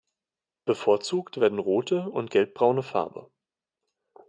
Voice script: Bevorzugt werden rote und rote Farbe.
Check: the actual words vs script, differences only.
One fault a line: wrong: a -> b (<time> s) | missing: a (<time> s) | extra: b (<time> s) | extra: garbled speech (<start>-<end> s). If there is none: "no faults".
wrong: rote -> gelbbraune (2.3 s)